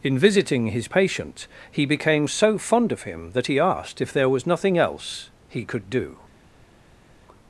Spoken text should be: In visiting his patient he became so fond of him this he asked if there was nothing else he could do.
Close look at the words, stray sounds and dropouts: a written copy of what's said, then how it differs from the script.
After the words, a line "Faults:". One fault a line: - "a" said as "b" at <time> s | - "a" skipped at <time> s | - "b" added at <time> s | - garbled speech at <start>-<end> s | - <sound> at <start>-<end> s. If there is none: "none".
In visiting his patient he became so fond of him that he asked if there was nothing else he could do.
Faults:
- "this" said as "that" at 3.3 s